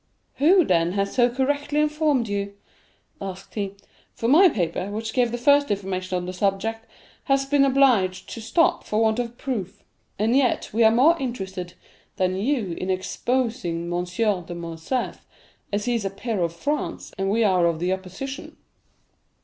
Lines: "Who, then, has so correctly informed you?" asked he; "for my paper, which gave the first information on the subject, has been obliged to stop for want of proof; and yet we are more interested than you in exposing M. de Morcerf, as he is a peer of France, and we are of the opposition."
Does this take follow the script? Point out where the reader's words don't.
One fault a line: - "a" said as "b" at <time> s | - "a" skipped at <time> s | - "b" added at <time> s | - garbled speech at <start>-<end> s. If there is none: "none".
none